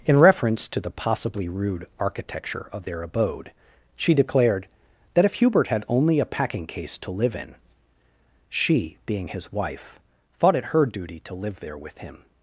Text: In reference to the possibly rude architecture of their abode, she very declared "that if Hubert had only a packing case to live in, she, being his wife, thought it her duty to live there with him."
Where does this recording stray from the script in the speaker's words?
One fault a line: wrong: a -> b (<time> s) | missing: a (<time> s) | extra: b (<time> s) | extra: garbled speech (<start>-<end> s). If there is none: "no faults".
missing: very (4.1 s)